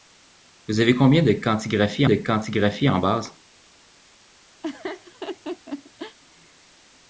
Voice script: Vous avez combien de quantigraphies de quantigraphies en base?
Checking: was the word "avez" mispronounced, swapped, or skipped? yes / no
no